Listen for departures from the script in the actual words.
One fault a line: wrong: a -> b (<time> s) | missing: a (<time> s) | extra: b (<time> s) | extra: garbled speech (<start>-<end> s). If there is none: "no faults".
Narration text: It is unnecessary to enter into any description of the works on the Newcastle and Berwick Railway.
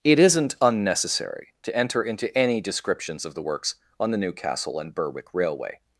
wrong: is -> isn't (0.2 s)
wrong: description -> descriptions (2.6 s)